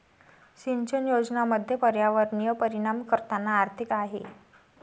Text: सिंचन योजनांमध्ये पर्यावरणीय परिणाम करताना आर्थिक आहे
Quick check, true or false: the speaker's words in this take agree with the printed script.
true